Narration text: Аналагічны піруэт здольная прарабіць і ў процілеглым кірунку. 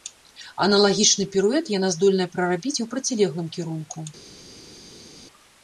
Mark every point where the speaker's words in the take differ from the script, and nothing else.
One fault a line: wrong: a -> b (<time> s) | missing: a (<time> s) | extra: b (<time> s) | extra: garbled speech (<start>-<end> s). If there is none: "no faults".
extra: яна (1.8 s)